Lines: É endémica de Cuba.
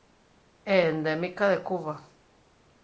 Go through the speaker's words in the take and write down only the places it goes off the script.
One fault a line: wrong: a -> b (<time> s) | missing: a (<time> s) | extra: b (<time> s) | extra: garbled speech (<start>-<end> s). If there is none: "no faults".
no faults